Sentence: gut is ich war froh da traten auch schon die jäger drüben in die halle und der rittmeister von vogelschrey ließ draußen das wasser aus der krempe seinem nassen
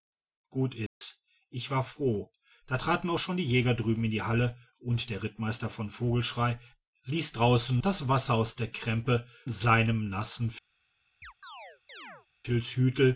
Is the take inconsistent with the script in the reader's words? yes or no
no